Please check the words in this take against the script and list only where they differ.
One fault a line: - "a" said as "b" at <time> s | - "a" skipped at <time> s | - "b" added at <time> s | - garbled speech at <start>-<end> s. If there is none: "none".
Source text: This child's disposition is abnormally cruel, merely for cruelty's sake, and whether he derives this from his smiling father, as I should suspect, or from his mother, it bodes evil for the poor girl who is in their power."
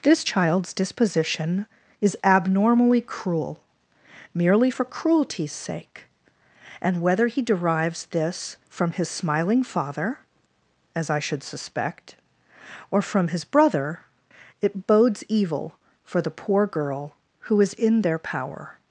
- "mother" said as "brother" at 13.4 s